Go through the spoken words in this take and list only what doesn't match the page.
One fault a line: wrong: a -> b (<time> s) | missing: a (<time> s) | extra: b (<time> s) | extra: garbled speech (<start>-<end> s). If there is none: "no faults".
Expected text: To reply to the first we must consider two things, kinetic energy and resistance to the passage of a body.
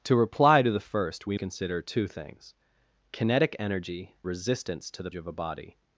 missing: must (1.4 s)
missing: and (4.2 s)
missing: passage (5.1 s)